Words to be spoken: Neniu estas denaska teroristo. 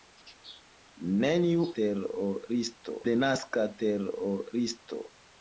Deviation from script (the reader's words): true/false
true